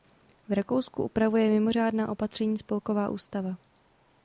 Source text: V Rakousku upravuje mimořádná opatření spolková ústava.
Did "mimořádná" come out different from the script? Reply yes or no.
no